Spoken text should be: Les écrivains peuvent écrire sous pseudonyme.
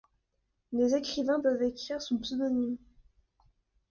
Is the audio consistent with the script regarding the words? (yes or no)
yes